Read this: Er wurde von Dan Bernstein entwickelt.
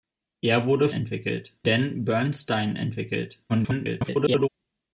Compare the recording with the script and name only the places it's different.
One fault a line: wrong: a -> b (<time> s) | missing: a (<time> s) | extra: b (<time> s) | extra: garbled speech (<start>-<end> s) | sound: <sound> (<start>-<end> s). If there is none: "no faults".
wrong: von -> entwickelt (0.9 s)
extra: garbled speech (3.5-4.5 s)